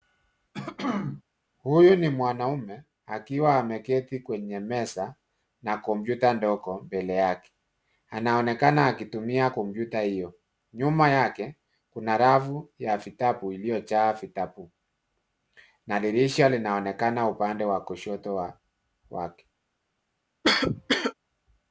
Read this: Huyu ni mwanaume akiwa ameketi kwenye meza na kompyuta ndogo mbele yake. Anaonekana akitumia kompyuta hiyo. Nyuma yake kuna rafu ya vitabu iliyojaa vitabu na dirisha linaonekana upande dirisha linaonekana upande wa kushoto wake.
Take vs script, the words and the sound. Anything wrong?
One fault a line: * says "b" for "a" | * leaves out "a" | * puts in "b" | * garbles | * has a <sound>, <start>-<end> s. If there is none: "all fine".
* has a throat clearing, 0.5-1.2 s
* leaves out "dirisha linaonekana upande"
* has a cough, 20.4-21.1 s